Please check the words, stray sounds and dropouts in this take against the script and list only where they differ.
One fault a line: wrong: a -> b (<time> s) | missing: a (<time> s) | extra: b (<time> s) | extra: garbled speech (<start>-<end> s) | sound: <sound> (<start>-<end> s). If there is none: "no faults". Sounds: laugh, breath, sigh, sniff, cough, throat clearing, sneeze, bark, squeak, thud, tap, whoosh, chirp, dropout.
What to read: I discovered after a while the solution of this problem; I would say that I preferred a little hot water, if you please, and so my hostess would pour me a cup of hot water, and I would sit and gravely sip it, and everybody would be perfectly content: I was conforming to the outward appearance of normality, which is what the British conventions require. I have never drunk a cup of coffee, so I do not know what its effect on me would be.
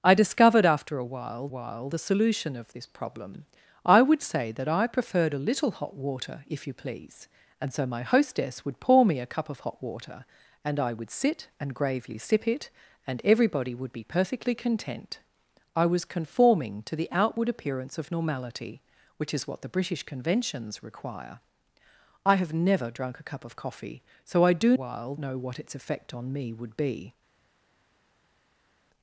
extra: while (1.5 s)
wrong: not -> while (24.7 s)